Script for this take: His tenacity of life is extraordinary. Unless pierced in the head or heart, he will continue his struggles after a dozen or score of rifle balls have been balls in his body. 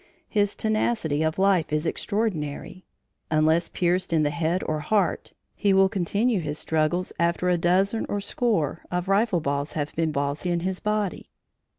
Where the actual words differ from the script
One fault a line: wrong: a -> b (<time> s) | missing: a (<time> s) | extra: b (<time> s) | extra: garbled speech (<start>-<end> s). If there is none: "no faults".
no faults